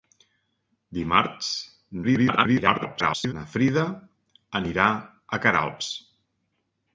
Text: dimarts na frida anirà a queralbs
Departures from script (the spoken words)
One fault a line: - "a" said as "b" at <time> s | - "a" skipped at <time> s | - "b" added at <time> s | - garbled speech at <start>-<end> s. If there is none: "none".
- garbled speech at 2.0-3.3 s